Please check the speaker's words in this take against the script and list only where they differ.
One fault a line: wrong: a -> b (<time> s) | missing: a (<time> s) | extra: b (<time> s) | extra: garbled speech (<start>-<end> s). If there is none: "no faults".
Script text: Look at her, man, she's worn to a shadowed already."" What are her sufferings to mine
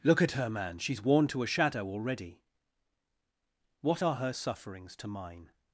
wrong: shadowed -> shadow (1.5 s)